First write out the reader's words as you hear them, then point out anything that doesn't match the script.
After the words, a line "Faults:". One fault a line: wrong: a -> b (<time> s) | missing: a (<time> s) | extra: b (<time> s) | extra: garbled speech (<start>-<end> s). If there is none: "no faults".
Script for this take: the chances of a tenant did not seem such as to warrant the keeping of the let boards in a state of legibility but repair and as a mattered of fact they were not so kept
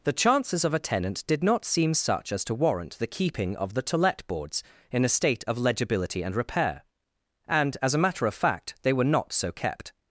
the chances of a tenant did not seem such as to warrant the keeping of the to let boards in a state of legibility and repair and as a matter of fact they were not so kept
Faults:
extra: to (3.8 s)
wrong: but -> and (6.2 s)
wrong: mattered -> matter (8.0 s)